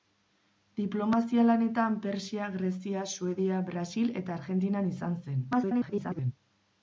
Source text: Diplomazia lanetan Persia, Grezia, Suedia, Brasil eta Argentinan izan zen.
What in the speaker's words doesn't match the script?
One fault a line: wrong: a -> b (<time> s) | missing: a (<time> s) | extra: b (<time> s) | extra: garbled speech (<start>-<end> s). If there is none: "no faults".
extra: garbled speech (5.5-6.3 s)